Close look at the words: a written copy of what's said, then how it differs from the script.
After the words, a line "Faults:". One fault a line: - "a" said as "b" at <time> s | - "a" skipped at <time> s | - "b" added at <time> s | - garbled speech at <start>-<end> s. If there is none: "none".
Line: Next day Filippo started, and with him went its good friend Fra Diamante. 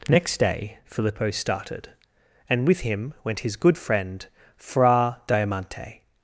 Next day Filippo started, and with him went his good friend Fra Diamante.
Faults:
- "its" said as "his" at 3.4 s